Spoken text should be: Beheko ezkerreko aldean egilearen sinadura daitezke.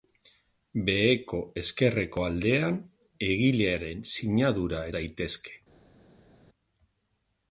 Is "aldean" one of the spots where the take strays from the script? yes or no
no